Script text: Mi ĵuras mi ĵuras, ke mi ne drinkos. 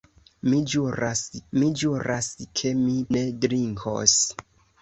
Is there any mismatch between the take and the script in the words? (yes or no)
no